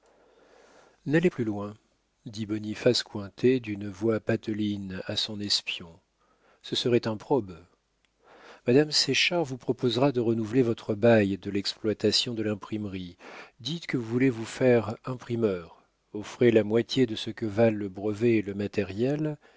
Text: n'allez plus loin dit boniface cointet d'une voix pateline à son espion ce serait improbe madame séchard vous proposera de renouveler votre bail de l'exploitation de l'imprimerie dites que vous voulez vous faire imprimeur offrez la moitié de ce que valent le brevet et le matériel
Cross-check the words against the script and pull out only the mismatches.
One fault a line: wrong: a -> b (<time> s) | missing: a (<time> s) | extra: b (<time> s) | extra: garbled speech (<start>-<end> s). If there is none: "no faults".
no faults